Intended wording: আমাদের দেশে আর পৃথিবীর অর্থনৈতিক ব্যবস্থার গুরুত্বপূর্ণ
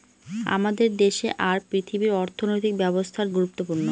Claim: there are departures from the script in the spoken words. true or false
false